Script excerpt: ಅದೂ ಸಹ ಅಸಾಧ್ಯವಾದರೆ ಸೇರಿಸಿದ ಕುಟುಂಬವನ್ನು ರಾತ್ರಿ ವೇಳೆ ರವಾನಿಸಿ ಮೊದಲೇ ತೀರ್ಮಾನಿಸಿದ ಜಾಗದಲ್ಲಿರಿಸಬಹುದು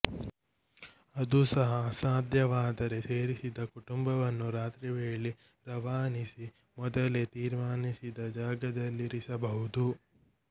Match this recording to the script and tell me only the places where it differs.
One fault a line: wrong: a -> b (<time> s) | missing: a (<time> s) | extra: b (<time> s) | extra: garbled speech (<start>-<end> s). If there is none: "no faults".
no faults